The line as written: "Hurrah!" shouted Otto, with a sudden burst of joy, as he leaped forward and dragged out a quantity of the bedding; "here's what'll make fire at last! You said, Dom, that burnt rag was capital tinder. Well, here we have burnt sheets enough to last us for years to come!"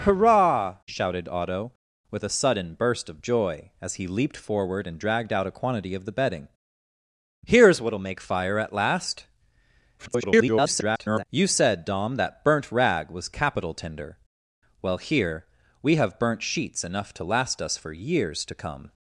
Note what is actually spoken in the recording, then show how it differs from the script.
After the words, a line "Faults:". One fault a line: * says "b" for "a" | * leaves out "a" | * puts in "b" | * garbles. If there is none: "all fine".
"Hurrah!" shouted Otto, with a sudden burst of joy, as he leaped forward and dragged out a quantity of the bedding; "here's what'll make fire at last! [garbled] You said, Dom, that burnt rag was capital tinder. Well, here we have burnt sheets enough to last us for years to come!"
Faults:
* garbles